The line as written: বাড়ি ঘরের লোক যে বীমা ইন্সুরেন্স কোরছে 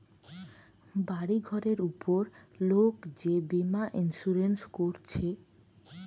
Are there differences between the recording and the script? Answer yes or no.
yes